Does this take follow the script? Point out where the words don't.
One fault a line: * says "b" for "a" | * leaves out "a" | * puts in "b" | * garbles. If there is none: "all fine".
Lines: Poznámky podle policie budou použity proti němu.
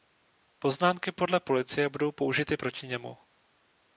all fine